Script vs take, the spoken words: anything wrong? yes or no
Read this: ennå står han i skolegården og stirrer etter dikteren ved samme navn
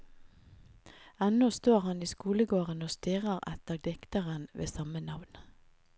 no